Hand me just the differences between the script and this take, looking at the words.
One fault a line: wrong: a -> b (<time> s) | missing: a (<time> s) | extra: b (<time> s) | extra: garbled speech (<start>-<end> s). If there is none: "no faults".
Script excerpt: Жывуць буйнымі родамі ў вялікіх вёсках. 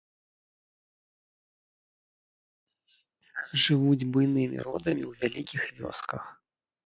no faults